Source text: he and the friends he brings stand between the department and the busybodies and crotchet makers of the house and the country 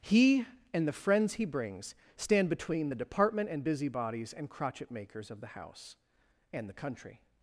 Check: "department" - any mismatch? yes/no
no